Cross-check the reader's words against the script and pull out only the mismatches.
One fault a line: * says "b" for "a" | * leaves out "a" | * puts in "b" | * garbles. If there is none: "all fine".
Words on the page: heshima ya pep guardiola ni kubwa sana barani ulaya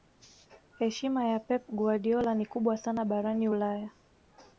all fine